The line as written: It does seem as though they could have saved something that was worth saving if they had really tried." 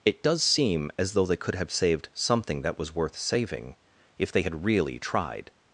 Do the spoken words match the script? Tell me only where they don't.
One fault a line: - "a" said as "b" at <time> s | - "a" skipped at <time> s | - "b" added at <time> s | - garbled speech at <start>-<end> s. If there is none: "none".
none